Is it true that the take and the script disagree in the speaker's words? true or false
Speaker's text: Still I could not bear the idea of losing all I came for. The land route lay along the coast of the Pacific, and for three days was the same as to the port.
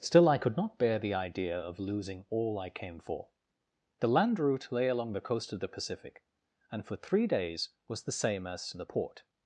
false